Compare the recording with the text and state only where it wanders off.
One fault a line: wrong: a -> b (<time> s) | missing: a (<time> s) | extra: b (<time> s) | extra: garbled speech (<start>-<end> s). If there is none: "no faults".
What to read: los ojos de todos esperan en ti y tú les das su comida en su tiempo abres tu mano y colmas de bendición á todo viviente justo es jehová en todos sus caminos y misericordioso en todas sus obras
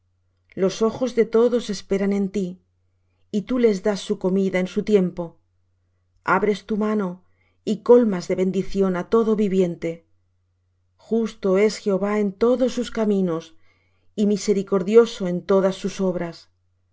no faults